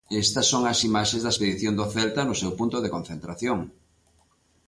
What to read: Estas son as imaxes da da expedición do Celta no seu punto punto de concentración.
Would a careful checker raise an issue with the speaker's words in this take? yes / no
yes